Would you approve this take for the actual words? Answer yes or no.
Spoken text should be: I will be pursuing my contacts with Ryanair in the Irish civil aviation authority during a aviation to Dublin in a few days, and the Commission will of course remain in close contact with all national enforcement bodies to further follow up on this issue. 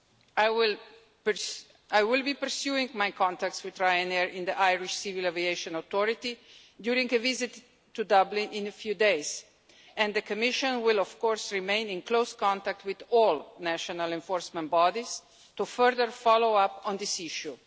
no